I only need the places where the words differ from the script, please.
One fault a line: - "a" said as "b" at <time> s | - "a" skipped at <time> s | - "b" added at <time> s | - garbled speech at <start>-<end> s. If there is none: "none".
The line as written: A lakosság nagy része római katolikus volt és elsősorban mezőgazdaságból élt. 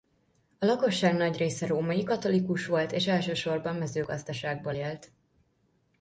none